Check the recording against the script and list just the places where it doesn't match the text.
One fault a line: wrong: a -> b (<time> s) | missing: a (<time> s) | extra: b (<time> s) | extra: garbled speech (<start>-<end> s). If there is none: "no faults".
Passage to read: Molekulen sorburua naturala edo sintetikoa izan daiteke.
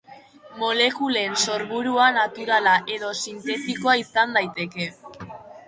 no faults